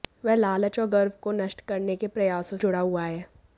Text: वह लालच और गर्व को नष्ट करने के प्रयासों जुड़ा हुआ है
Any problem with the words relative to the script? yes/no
no